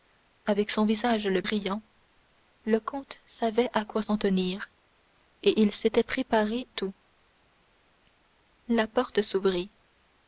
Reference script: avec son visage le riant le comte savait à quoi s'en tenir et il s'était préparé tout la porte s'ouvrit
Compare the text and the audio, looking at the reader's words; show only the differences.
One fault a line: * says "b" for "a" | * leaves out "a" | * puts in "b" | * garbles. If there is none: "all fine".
all fine